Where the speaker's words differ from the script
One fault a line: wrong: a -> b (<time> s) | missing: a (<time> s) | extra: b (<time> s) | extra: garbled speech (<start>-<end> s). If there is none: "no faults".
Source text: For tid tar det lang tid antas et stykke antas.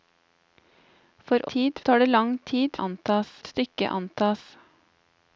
no faults